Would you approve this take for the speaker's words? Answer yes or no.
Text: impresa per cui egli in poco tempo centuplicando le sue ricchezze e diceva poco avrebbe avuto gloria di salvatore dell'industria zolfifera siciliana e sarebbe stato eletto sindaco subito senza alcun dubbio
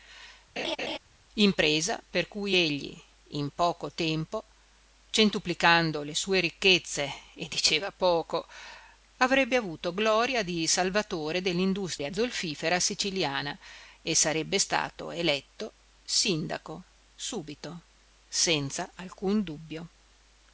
yes